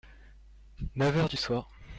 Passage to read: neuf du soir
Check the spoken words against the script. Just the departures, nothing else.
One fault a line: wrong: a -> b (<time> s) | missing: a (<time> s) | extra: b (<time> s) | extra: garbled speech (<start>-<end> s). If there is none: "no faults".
extra: heures (1.1 s)